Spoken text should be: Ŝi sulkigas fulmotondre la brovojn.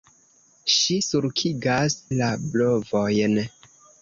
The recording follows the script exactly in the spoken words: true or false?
false